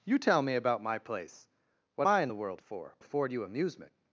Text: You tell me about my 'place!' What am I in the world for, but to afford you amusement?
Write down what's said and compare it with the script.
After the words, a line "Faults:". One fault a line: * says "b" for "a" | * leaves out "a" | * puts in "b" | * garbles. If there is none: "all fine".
You tell me about my 'place!' What I in the world for, afford you amusement?
Faults:
* leaves out "am"
* leaves out "but to"